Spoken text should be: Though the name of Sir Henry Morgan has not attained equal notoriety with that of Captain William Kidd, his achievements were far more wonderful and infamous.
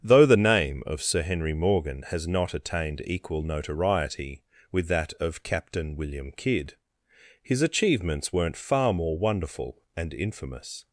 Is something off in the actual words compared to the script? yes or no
yes